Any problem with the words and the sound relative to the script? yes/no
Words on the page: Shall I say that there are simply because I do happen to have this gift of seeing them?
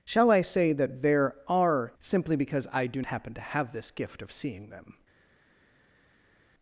no